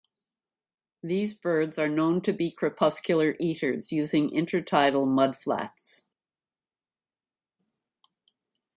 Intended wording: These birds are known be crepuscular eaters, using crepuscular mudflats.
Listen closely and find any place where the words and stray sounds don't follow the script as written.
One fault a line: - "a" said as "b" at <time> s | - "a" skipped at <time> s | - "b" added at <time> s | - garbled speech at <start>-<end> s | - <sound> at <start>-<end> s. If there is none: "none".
- "to" added at 2.2 s
- "crepuscular" said as "intertidal" at 4.3 s